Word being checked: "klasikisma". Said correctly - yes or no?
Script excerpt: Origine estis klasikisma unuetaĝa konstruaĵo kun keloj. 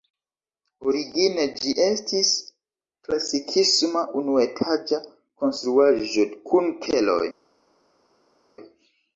yes